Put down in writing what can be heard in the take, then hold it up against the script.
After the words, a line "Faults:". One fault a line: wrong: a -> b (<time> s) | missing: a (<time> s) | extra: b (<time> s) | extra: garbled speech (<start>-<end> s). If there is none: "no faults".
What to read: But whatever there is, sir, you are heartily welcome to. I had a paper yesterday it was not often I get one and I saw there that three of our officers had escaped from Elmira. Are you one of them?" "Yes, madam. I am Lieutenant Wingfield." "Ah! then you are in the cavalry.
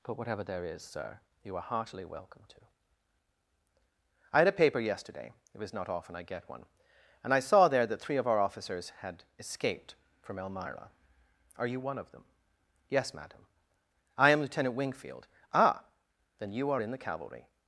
But whatever there is, sir, you are heartily welcome to. I had a paper yesterday it was not often I get one and I saw there that three of our officers had escaped from Elmira. Are you one of them?" "Yes, madam. I am Lieutenant Wingfield." "Ah! then you are in the cavalry.
Faults:
no faults